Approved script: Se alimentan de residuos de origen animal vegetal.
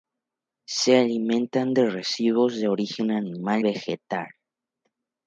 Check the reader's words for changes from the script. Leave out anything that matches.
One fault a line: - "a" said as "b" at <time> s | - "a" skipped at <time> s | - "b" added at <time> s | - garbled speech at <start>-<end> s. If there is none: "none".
none